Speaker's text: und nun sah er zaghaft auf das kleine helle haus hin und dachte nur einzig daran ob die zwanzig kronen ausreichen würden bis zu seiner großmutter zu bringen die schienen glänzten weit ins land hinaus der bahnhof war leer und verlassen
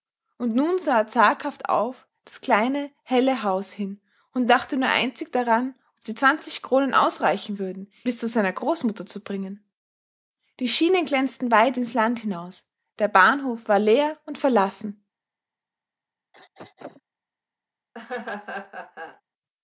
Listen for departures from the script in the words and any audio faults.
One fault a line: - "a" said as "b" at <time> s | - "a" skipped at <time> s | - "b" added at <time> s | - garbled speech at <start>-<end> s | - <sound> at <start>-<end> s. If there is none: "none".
- throat clearing at 16.3-17.0 s
- laugh at 17.9-19.2 s